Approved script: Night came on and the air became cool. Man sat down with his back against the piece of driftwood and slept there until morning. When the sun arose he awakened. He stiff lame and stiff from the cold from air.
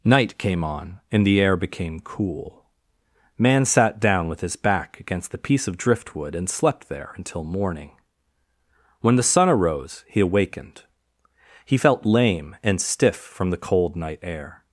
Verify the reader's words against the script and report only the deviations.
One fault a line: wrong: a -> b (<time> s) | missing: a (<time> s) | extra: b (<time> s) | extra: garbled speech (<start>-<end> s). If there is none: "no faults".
wrong: stiff -> felt (11.7 s)
wrong: from -> night (14.0 s)